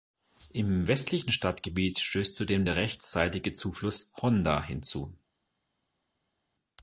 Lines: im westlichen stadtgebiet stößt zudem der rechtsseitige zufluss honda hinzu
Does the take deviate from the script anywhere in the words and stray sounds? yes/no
no